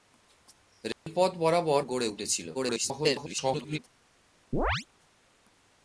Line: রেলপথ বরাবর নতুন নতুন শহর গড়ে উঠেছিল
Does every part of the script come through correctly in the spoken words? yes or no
no